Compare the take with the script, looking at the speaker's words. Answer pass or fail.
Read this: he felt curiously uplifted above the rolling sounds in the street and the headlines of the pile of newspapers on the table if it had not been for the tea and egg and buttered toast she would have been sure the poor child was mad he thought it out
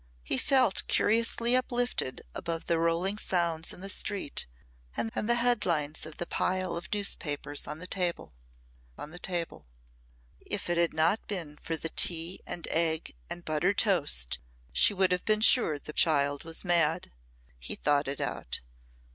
fail